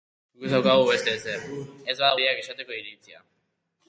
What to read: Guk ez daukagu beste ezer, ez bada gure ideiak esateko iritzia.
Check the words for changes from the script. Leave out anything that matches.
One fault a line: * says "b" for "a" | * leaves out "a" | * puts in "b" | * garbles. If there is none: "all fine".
* leaves out "gure"